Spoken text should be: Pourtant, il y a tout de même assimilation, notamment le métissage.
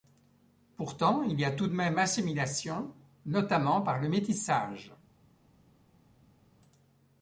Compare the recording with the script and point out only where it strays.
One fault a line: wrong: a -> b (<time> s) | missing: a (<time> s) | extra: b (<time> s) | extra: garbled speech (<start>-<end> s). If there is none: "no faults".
extra: par (3.8 s)